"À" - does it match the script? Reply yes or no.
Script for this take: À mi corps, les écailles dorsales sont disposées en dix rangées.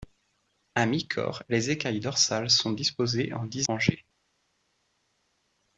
yes